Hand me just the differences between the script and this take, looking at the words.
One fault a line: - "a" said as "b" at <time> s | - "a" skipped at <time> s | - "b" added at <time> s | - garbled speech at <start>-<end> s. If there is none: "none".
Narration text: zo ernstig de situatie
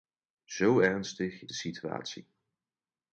none